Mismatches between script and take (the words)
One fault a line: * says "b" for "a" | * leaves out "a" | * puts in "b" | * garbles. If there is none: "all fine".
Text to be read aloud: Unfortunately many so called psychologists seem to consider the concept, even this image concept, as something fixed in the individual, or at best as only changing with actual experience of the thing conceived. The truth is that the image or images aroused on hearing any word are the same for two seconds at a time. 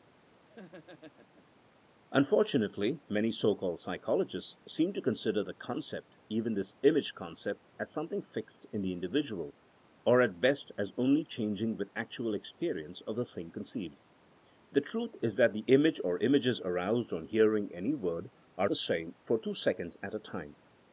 all fine